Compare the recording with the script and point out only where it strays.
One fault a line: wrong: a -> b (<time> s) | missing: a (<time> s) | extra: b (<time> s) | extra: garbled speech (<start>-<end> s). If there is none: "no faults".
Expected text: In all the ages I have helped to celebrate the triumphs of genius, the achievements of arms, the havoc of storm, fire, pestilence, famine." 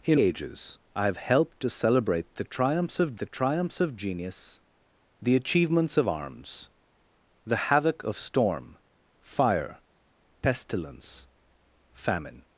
missing: all the (0.2 s)
extra: the triumphs of (3.2 s)